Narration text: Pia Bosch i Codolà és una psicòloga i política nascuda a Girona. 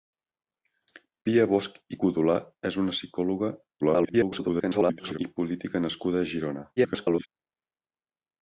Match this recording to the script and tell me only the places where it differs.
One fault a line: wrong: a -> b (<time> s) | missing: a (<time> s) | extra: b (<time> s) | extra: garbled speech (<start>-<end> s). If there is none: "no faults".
extra: garbled speech (3.8-5.2 s)
extra: garbled speech (6.8-7.3 s)